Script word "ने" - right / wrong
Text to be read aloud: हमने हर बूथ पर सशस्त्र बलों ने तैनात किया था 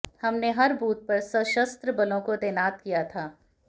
wrong